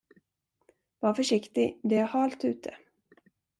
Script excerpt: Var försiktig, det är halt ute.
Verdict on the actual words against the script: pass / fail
pass